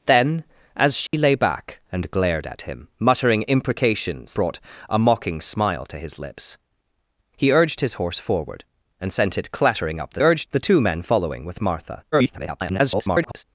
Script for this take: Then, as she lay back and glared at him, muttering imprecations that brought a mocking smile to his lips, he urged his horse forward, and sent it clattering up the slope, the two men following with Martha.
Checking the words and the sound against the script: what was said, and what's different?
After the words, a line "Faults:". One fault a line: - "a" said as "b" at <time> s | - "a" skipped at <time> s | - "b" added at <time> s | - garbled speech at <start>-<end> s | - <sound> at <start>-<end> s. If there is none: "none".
Then, as she lay back and glared at him, muttering imprecations brought a mocking smile to his lips, he urged his horse forward, and sent it clattering up the urged, the two men following with Martha. [garbled]
Faults:
- dropout at 1.1-1.1 s
- "that" skipped at 4.3 s
- "slope" said as "urged" at 10.2 s
- garbled speech at 12.1-13.4 s